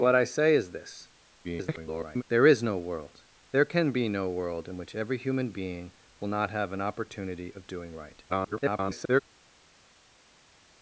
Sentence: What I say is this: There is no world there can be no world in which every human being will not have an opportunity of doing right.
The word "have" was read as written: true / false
true